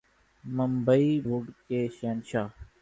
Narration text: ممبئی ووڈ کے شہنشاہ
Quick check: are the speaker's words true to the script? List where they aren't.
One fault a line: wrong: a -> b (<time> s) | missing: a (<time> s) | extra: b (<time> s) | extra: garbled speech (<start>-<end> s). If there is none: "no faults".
no faults